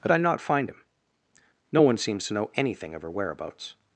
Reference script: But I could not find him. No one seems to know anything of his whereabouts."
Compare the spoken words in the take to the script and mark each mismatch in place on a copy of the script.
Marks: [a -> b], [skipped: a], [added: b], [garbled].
But I [skipped: could] not find him. No one seems to know anything of [his -> her] whereabouts."